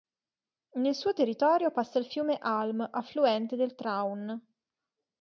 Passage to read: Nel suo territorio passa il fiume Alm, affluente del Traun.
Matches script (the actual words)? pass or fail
pass